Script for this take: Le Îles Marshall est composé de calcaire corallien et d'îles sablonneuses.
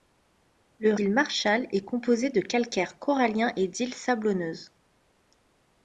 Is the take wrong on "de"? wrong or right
right